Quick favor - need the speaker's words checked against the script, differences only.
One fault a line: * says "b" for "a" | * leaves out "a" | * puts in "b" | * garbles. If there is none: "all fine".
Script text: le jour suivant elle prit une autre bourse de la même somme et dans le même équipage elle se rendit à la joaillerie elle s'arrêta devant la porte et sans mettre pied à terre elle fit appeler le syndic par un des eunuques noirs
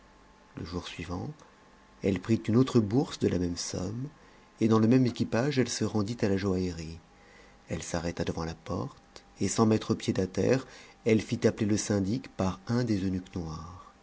all fine